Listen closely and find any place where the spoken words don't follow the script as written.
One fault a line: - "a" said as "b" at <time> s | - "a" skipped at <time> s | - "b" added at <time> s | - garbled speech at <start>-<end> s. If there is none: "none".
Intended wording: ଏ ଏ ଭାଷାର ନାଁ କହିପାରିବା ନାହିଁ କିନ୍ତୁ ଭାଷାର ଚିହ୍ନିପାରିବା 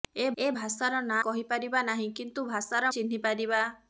none